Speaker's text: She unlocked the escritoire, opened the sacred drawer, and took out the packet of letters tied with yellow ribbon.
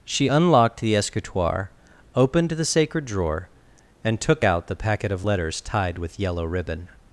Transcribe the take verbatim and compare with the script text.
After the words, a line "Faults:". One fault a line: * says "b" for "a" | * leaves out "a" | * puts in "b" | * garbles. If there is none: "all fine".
She unlocked the escritoire, opened the sacred drawer, and took out the packet of letters tied with yellow ribbon.
Faults:
all fine